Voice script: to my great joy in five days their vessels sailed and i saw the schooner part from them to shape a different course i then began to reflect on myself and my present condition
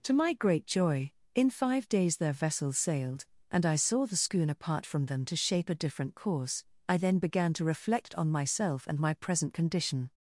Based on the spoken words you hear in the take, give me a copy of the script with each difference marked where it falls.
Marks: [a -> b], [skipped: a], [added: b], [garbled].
to my great joy in five days their vessels sailed and i saw the schooner part from them to shape a different course i then began to reflect on myself and my present condition